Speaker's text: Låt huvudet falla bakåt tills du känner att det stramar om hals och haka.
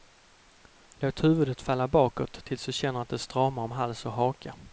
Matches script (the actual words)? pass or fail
pass